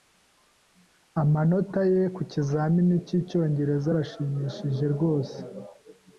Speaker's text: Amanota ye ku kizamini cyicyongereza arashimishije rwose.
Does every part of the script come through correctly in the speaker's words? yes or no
yes